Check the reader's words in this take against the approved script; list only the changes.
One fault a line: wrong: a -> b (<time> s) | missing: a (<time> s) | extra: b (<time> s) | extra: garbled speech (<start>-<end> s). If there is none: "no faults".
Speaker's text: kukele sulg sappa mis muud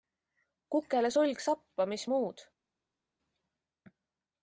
no faults